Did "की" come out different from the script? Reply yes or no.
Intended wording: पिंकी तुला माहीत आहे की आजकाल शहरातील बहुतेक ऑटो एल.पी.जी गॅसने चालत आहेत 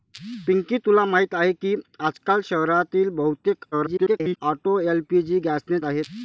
no